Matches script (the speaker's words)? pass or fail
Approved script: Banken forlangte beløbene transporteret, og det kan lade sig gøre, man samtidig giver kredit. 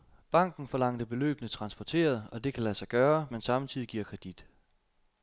pass